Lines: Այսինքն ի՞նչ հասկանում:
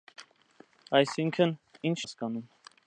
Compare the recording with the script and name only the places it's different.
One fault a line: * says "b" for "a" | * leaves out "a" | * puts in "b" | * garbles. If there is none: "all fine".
all fine